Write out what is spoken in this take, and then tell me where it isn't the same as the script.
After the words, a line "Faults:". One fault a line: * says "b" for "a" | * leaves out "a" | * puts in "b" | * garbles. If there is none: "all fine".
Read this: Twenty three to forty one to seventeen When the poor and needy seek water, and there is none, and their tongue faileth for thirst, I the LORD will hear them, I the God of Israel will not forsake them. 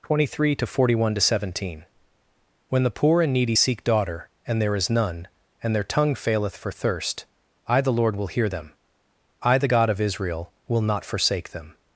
Twenty three to forty one to seventeen When the poor and needy seek daughter, and there is none, and their tongue faileth for thirst, I the LORD will hear them, I the God of Israel will not forsake them.
Faults:
* says "daughter" for "water"